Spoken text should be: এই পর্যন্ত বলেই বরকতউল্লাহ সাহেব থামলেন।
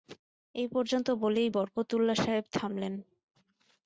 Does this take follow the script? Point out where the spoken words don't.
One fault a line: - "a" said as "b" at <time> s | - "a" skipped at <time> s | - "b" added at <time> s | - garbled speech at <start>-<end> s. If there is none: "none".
none